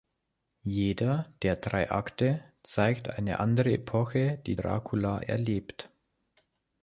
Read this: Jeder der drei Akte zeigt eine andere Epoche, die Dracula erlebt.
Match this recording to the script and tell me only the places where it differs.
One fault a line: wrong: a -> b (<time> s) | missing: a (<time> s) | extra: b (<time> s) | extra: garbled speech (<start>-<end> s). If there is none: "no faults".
no faults